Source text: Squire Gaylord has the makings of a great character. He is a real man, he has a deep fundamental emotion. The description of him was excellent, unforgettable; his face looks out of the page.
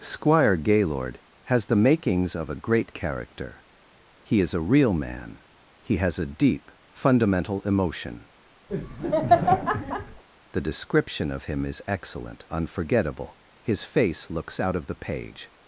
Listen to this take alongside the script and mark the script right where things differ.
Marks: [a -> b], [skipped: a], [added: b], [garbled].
Squire Gaylord has the makings of a great character. He is a real man, he has a deep fundamental emotion. The description of him [was -> is] excellent, unforgettable; his face looks out of the page.